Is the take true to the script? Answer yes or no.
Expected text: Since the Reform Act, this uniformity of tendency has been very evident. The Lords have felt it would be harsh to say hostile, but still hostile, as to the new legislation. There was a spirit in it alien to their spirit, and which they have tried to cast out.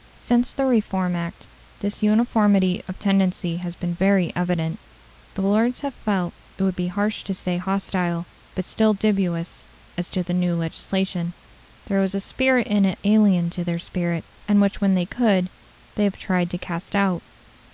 no